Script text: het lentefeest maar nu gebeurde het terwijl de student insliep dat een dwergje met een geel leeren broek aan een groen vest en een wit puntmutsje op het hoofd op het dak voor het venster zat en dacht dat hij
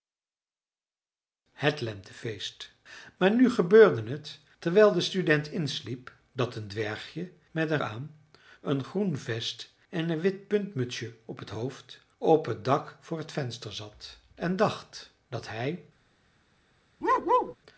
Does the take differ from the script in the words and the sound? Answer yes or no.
yes